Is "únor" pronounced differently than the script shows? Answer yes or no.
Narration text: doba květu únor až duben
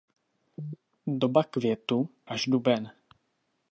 yes